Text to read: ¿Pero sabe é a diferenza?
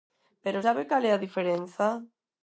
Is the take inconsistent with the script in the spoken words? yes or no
yes